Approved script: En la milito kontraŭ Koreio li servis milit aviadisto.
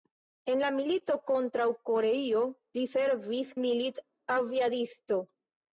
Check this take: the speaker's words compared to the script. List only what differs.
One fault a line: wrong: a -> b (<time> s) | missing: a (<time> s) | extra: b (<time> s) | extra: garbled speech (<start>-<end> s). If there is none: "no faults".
no faults